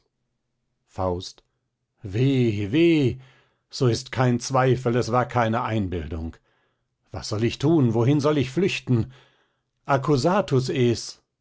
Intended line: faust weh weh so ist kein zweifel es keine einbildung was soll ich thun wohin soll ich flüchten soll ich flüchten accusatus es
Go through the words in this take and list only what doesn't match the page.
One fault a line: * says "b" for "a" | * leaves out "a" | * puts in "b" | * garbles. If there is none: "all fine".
* puts in "war"
* leaves out "soll ich flüchten"